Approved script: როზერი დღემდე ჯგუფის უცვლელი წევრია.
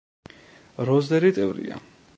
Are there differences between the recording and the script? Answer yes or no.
yes